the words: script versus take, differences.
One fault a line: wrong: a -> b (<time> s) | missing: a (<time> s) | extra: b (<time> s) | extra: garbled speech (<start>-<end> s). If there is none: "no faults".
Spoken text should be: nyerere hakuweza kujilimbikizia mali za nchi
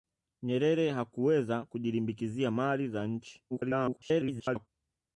extra: garbled speech (3.5-4.7 s)